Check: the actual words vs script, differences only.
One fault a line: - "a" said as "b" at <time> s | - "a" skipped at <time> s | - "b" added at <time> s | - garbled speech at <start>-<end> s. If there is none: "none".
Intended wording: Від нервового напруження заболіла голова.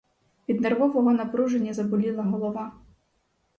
none